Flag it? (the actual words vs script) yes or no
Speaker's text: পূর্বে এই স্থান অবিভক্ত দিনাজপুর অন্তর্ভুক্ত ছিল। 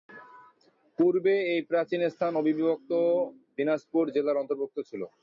yes